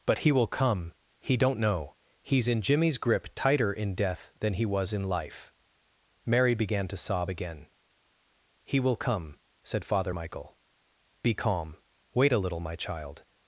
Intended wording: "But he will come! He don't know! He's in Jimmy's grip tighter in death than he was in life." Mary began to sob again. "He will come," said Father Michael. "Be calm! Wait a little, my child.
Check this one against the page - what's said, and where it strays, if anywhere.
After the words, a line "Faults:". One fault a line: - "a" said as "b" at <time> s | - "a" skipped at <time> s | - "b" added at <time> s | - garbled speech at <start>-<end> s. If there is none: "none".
"But he will come! He don't know! He's in Jimmy's grip tighter in death than he was in life." Mary began to sob again. "He will come," said Father Michael. "Be calm! Wait a little, my child.
Faults:
none